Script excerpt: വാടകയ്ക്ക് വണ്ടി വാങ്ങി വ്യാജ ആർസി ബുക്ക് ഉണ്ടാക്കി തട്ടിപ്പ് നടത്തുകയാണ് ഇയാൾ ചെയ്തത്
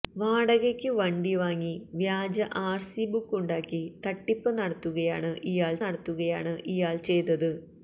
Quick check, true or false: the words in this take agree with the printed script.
false